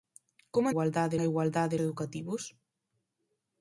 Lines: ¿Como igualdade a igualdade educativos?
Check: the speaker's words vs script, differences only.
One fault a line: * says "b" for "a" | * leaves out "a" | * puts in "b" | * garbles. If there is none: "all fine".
all fine